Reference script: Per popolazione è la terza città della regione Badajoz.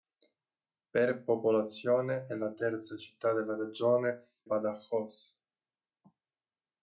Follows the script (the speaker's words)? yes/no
yes